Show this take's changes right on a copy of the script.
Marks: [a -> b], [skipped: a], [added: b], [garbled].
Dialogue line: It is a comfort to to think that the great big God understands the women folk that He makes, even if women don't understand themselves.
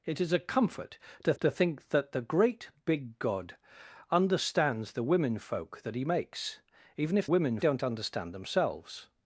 It is a comfort to to think that the great big God understands the women folk that He makes, even if women don't understand themselves.